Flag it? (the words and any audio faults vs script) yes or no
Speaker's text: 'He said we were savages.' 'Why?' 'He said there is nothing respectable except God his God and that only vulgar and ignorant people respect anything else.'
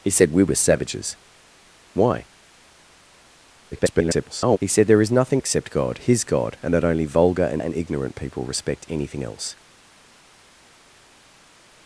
yes